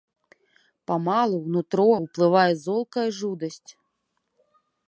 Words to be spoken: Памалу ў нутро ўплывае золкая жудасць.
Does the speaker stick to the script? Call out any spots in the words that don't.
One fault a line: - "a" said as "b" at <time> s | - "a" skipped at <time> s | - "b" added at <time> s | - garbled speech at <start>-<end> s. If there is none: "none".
none